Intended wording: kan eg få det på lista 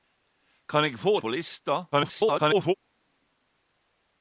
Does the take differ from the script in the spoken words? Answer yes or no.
yes